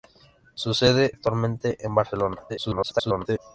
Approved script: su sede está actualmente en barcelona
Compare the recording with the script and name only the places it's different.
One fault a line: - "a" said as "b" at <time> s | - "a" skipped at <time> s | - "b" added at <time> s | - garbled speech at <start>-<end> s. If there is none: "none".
- "está" skipped at 1.1 s
- garbled speech at 2.5-3.4 s